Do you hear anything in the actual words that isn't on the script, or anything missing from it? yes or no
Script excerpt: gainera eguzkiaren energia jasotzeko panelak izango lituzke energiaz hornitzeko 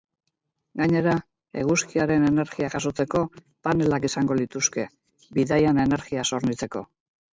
yes